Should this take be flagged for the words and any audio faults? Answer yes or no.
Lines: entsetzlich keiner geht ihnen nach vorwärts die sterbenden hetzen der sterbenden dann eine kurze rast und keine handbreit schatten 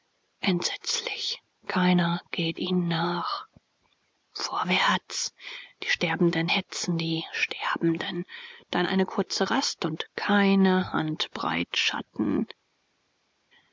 yes